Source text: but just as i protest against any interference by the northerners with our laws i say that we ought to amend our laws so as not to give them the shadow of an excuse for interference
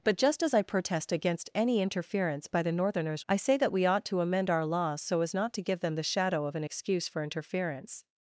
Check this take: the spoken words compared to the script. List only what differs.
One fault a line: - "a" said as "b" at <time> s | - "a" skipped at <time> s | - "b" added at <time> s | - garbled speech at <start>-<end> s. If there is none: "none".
- "with our laws" skipped at 3.2 s